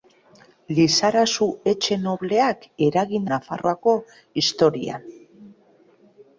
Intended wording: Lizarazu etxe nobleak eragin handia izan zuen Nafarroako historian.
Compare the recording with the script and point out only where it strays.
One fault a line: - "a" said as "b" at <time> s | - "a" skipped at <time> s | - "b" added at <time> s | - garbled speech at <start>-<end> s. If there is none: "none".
- "handia izan zuen" skipped at 3.3 s